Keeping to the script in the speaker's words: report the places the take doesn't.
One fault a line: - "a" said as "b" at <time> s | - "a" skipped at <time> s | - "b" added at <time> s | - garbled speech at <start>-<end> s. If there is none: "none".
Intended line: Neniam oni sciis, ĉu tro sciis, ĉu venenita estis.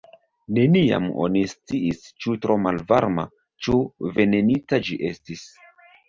- "sciis" said as "malvarma" at 2.7 s
- "ĝi" added at 4.9 s